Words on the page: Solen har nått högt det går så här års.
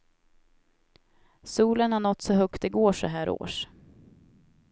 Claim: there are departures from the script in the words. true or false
true